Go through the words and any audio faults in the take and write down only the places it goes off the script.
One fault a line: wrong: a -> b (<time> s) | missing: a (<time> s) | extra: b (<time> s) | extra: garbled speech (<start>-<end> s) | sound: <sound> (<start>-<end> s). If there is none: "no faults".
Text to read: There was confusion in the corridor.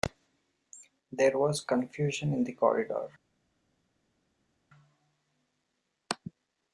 no faults